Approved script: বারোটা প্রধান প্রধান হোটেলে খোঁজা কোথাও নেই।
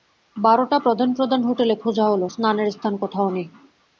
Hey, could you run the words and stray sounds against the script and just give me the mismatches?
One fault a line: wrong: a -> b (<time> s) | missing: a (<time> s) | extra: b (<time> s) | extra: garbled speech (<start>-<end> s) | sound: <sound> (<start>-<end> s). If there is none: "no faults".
extra: হল স্নানের স্থান (2.1 s)